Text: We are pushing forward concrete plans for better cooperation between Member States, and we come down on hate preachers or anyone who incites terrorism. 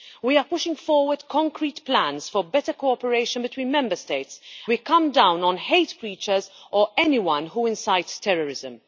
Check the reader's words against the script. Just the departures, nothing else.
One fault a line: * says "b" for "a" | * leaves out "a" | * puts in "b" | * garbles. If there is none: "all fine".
* leaves out "and"